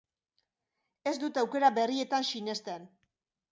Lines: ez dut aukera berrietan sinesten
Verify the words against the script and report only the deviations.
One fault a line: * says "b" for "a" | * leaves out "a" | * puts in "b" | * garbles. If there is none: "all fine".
all fine